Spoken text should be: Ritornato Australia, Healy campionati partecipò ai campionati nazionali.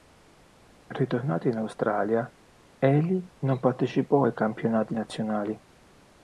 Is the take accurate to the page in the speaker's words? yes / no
no